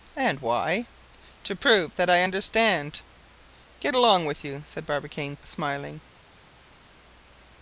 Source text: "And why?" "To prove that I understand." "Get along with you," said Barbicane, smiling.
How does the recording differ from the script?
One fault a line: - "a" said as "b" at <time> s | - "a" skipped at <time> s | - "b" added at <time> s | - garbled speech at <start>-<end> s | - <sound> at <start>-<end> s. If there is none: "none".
none